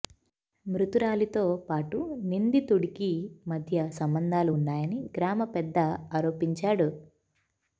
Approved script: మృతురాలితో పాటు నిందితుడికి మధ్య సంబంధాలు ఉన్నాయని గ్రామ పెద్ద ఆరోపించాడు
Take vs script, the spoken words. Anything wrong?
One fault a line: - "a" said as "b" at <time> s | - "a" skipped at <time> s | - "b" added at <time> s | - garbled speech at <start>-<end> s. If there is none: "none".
none